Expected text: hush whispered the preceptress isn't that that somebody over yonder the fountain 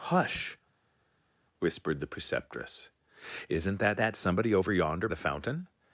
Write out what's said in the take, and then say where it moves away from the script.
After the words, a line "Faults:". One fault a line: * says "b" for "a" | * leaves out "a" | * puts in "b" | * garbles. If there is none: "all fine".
hush whispered the preceptress isn't that that somebody over yonder the fountain
Faults:
all fine